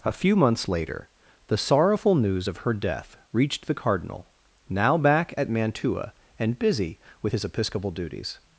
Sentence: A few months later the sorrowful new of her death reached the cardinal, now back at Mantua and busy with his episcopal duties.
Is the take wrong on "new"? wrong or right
wrong